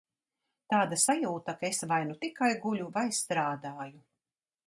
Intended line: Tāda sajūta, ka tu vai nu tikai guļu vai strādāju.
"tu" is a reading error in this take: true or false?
true